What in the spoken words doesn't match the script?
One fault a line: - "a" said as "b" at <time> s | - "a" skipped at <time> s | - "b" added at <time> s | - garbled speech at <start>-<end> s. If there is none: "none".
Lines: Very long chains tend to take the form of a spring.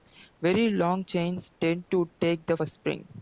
- "form of" skipped at 2.6 s